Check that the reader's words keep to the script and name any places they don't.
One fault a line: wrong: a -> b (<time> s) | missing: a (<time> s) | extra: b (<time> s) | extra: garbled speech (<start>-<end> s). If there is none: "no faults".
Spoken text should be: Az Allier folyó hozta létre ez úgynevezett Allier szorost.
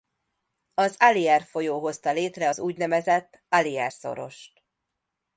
wrong: ez -> az (2.5 s)